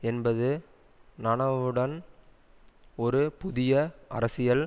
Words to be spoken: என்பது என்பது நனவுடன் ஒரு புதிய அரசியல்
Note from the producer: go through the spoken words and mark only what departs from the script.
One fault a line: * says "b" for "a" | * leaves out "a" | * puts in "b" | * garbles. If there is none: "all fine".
* leaves out "என்பது"